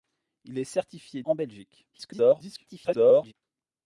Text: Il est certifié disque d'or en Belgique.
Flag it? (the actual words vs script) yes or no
yes